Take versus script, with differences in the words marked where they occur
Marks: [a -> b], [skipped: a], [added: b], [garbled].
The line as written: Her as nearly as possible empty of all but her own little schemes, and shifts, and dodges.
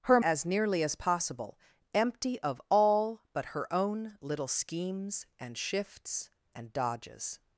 Her as nearly as possible empty of all but her own little schemes, and shifts, and dodges.